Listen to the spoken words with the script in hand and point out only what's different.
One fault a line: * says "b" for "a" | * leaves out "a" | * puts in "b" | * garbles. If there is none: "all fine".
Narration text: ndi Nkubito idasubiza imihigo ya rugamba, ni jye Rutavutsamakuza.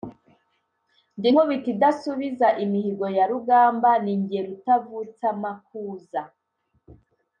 all fine